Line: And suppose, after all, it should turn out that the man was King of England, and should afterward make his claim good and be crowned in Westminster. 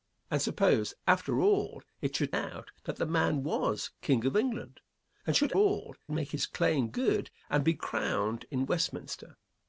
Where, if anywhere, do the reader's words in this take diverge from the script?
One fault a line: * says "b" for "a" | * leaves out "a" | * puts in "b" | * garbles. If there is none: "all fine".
* leaves out "turn"
* says "all" for "afterward"